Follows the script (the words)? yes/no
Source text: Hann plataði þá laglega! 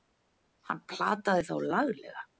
yes